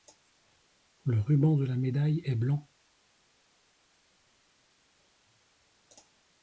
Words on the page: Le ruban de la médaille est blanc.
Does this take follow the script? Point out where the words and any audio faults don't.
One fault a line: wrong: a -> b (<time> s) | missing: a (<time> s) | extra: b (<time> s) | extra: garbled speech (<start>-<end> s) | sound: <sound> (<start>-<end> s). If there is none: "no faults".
no faults